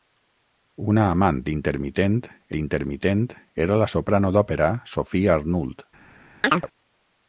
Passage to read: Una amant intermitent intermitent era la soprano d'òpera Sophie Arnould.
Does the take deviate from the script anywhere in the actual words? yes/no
no